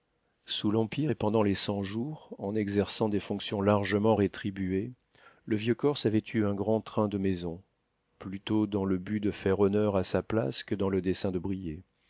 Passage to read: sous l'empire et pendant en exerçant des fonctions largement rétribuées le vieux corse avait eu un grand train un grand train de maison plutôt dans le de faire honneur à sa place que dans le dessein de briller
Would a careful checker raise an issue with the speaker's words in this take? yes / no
yes